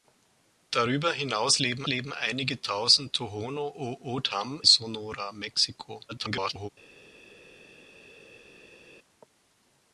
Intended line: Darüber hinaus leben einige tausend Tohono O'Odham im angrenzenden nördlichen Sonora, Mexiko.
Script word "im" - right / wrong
wrong